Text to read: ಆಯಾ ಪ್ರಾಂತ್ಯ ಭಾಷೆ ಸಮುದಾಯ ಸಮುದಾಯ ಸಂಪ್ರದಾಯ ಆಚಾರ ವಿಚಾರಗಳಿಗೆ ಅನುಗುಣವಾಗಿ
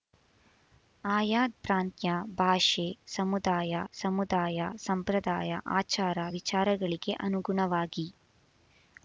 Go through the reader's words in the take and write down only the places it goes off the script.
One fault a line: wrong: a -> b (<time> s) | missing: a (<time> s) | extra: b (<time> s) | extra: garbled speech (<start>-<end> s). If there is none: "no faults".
no faults